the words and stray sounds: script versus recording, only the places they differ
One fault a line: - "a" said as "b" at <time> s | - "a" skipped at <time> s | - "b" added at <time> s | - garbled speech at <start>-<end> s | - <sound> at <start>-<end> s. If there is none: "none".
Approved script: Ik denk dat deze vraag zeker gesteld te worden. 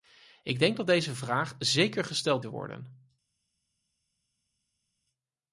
none